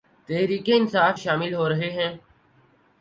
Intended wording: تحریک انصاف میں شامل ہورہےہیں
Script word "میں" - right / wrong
wrong